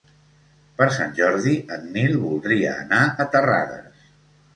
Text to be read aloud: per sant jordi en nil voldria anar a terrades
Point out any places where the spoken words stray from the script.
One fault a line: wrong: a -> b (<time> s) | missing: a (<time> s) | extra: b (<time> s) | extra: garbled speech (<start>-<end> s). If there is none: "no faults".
no faults